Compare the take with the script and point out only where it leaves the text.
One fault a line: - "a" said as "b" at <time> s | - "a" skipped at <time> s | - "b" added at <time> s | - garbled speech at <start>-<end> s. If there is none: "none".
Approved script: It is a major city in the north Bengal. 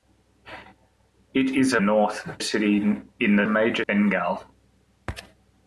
- "major" said as "north" at 1.8 s
- "north" said as "major" at 3.4 s